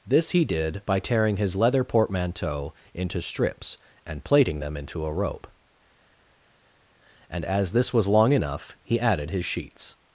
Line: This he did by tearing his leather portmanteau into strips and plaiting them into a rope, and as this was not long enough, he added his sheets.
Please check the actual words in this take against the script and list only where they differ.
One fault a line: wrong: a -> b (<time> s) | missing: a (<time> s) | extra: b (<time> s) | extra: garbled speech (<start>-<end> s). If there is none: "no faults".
missing: not (8.1 s)